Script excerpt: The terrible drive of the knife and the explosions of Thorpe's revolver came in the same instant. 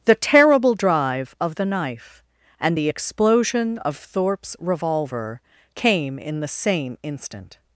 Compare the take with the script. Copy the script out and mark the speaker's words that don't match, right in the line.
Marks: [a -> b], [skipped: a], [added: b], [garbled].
The terrible drive of the knife and the [explosions -> explosion] of Thorpe's revolver came in the same instant.